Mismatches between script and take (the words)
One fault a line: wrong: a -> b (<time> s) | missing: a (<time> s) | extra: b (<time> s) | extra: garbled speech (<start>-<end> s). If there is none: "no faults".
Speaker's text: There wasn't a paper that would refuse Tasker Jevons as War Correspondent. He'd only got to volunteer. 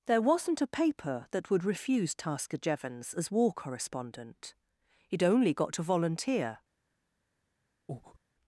no faults